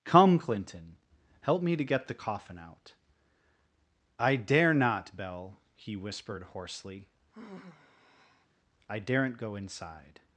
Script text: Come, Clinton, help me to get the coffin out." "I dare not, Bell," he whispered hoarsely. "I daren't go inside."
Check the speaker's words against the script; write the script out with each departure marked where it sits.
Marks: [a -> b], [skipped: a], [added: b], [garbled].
Come, Clinton, help me to get the coffin out." "I dare not, Bell," he whispered hoarsely. "I daren't go inside."